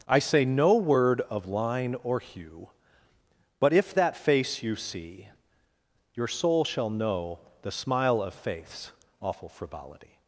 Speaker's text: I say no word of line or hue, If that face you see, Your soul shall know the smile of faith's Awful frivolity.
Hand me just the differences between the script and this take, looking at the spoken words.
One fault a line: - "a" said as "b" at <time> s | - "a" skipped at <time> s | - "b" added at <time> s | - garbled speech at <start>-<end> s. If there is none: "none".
- "But" added at 3.6 s